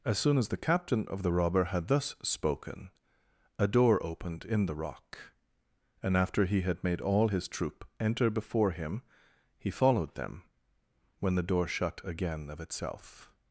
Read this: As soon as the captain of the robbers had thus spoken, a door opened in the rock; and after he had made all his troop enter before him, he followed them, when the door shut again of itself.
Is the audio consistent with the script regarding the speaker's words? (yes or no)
no